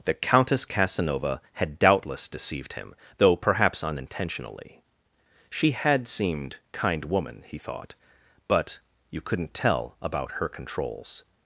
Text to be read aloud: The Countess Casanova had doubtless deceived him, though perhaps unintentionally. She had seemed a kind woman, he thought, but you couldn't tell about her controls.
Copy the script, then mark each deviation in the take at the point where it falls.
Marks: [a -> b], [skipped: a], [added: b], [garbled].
The Countess Casanova had doubtless deceived him, though perhaps unintentionally. She had seemed [skipped: a] kind woman, he thought, but you couldn't tell about her controls.